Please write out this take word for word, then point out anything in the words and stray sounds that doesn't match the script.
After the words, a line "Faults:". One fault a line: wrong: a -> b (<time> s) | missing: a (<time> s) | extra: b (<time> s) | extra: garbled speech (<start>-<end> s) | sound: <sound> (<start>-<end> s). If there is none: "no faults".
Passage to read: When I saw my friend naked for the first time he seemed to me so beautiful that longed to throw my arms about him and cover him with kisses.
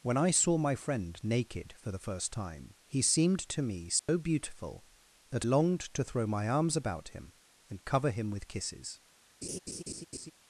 When I saw my friend naked for the first time he seemed to me so beautiful that longed to throw my arms about him and cover him with kisses.
Faults:
sound: dropout (4.0-4.1 s)
sound: laugh (9.4-10.3 s)